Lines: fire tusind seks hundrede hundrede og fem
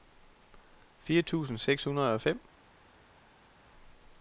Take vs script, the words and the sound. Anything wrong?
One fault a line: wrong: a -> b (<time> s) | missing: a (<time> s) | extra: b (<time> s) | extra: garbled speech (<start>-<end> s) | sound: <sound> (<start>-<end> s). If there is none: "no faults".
missing: hundrede (2.1 s)